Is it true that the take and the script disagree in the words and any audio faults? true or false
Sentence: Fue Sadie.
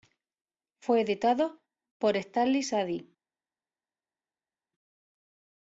true